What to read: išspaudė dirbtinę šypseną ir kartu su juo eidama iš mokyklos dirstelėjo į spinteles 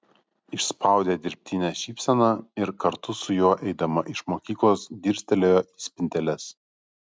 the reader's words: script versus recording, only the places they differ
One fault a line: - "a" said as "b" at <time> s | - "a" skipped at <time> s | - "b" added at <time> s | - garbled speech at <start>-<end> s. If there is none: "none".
none